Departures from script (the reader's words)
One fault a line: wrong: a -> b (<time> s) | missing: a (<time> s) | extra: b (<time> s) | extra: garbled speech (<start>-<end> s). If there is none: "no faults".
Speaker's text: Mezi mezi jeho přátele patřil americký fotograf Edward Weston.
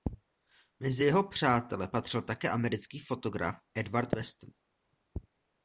missing: mezi (1.0 s)
extra: také (2.2 s)